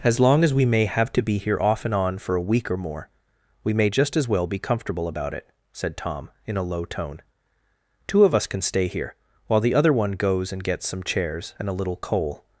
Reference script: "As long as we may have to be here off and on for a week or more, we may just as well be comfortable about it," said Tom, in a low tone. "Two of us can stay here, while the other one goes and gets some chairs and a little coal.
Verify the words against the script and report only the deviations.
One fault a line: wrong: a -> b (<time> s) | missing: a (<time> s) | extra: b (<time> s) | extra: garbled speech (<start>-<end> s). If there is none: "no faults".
no faults